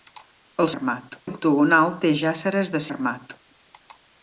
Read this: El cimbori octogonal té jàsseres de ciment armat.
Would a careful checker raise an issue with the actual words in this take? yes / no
yes